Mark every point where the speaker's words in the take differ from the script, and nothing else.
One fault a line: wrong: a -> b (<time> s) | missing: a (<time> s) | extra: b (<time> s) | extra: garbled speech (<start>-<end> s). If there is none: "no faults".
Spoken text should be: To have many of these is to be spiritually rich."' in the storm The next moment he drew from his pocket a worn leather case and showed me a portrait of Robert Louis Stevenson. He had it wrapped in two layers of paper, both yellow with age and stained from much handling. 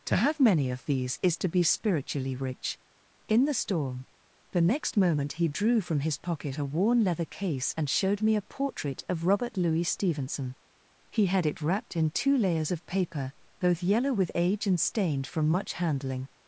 no faults